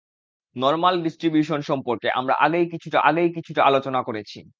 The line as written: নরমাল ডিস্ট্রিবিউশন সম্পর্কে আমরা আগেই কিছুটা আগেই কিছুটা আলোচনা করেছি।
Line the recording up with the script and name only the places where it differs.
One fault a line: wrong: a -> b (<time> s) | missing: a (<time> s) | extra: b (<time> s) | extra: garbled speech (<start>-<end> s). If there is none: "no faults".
no faults